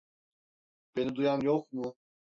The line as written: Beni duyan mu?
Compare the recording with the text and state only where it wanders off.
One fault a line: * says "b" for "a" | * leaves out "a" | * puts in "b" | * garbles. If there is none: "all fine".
* puts in "yok"